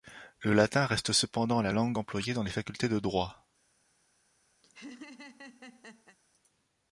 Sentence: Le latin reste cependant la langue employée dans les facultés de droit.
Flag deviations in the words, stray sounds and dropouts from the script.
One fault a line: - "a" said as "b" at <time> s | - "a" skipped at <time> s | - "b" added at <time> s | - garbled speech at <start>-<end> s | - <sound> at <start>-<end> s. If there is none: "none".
- laugh at 4.6-6.2 s